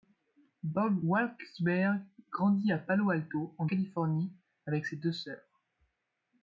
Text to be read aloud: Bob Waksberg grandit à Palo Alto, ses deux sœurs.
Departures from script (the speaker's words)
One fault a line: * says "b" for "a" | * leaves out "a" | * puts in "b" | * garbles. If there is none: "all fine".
* puts in "en Californie avec"